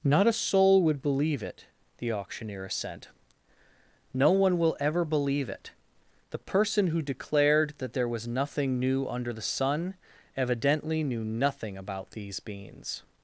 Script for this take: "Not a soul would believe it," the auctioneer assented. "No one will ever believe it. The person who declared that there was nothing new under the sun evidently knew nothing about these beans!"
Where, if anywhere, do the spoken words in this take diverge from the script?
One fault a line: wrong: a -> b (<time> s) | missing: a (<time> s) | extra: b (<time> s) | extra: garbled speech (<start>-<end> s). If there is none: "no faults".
wrong: assented -> assent (2.6 s)